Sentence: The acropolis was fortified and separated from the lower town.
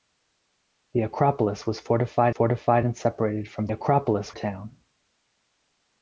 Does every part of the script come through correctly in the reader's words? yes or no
no